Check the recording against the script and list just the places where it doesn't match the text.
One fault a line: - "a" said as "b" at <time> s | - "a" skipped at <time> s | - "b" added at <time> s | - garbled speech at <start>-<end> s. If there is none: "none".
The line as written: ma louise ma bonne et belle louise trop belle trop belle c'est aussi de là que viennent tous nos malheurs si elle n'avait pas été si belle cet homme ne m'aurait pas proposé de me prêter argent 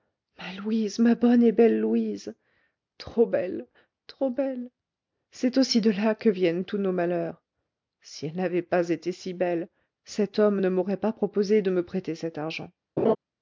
- "cet" added at 12.1 s